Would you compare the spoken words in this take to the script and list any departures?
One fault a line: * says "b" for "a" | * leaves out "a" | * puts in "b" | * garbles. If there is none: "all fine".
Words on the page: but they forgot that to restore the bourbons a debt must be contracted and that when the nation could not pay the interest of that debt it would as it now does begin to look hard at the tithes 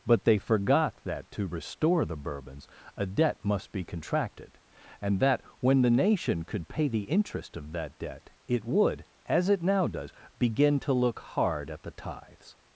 * leaves out "not"